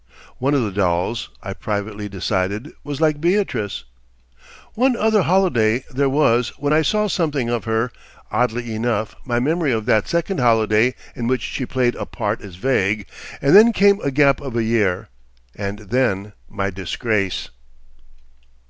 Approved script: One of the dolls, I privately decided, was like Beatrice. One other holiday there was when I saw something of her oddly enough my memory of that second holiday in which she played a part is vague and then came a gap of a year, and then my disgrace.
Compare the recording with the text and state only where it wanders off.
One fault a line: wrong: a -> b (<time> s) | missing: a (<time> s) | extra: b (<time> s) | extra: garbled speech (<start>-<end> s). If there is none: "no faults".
no faults